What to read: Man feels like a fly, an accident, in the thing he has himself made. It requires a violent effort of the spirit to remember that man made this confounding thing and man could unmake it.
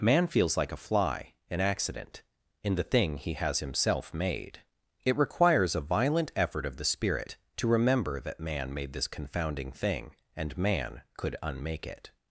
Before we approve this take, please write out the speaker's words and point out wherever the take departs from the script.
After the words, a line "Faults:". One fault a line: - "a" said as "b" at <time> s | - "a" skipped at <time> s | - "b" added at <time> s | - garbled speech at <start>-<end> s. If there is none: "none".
Man feels like a fly, an accident, in the thing he has himself made. It requires a violent effort of the spirit to remember that man made this confounding thing and man could unmake it.
Faults:
none